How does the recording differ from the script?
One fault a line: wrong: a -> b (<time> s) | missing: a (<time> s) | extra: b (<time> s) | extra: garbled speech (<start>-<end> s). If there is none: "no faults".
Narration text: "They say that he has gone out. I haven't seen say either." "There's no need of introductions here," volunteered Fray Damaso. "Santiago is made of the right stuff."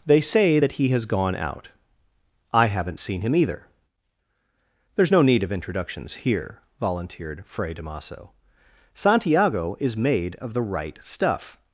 wrong: say -> him (3.2 s)